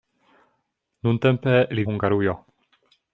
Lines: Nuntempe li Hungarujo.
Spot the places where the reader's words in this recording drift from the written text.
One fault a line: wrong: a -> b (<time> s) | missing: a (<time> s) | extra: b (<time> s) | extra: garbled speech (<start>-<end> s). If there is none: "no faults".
no faults